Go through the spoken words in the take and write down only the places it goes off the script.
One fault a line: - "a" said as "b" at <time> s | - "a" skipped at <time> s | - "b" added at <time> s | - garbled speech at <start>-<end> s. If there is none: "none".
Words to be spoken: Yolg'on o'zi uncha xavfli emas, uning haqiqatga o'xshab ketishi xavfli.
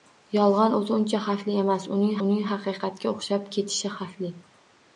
- "uning" added at 2.2 s